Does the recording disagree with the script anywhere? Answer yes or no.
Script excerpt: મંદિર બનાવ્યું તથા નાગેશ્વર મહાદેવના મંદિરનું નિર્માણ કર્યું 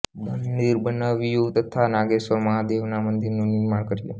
no